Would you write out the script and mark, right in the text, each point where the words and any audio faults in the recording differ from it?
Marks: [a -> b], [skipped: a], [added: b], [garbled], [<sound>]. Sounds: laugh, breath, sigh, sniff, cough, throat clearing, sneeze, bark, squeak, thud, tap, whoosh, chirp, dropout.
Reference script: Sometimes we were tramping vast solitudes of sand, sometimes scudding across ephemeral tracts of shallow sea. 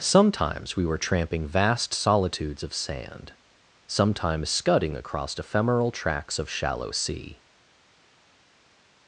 Sometimes we were tramping vast solitudes of sand, sometimes scudding across ephemeral tracts of shallow sea.